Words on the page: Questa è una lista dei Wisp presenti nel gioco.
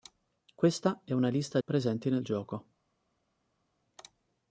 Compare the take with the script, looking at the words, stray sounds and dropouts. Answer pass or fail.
fail